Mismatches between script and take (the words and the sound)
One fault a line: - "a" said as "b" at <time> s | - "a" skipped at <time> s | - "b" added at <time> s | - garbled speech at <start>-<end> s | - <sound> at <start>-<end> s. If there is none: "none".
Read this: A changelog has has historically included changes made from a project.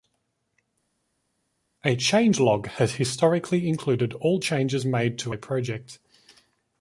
- "has" skipped at 3.0 s
- "all" added at 4.1 s
- "from" said as "to" at 5.2 s